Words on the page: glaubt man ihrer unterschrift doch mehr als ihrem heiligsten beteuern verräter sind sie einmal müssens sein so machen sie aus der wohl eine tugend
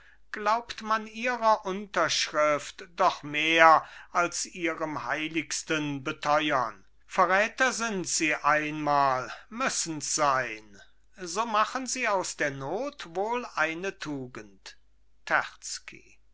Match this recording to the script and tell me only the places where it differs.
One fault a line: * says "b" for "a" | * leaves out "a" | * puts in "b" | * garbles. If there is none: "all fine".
* puts in "not"